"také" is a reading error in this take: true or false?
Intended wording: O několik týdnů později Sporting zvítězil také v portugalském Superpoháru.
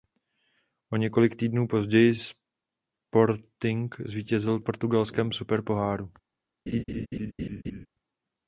true